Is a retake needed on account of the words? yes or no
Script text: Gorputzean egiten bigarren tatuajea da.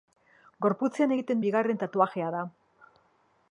no